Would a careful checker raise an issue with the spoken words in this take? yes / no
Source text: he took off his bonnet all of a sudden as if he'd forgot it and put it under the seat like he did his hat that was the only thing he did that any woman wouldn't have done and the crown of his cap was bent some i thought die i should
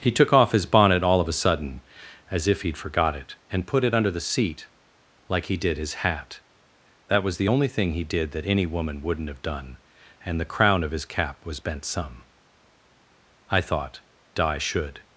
yes